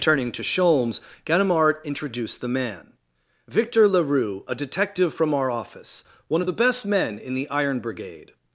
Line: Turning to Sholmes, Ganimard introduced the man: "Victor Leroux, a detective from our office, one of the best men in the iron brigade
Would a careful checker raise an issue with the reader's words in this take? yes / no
no